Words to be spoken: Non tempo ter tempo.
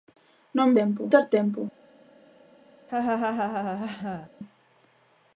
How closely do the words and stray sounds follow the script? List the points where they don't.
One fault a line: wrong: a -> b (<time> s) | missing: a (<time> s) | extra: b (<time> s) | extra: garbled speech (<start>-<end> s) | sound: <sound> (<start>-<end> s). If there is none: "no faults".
sound: laugh (2.9-4.3 s)